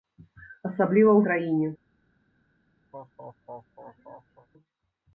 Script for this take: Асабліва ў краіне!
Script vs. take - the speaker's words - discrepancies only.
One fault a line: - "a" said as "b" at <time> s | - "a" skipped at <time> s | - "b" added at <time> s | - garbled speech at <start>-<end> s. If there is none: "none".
none